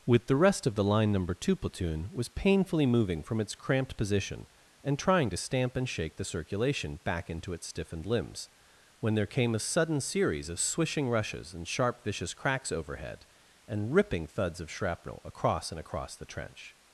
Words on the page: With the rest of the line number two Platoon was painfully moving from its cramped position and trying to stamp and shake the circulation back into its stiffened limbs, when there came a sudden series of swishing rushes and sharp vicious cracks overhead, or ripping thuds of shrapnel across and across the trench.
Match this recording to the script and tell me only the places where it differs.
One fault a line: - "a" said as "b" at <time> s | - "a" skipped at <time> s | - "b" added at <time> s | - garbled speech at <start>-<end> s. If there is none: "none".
- "or" said as "and" at 13.7 s